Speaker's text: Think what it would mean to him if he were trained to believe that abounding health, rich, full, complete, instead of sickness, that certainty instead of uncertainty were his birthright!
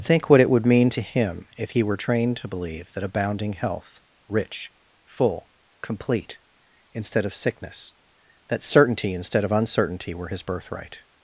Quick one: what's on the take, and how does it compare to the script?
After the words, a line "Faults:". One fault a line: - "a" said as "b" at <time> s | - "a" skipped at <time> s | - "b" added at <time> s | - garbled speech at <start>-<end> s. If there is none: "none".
Think what it would mean to him if he were trained to believe that abounding health, rich, full, complete, instead of sickness, that certainty instead of uncertainty were his birthright!
Faults:
none